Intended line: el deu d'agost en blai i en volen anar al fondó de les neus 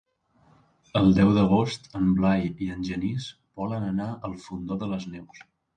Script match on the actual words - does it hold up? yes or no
no